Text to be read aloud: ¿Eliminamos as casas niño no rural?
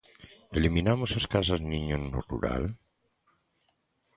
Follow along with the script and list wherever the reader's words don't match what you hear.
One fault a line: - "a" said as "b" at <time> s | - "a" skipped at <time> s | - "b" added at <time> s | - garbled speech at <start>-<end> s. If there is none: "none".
none